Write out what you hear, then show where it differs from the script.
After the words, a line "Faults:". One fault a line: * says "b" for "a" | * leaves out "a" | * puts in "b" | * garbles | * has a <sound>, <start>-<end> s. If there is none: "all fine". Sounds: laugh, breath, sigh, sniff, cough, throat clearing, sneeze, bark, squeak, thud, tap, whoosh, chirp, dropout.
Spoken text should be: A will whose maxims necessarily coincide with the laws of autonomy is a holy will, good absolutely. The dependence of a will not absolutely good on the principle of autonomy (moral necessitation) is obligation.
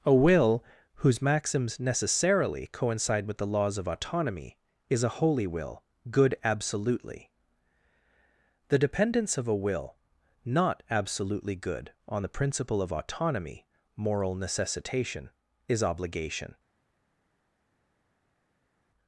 A will whose maxims necessarily coincide with the laws of autonomy is a holy will, good absolutely. The dependence of a will not absolutely good on the principle of autonomy (moral necessitation) is obligation.
Faults:
all fine